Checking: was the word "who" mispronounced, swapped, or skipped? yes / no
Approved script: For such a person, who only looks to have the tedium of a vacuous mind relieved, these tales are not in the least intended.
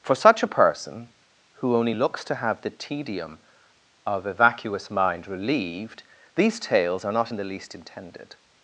no